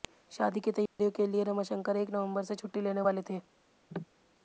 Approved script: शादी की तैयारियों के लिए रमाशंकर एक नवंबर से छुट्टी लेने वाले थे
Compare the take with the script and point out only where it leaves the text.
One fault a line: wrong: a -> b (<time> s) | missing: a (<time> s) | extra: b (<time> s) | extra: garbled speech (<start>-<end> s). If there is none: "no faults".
no faults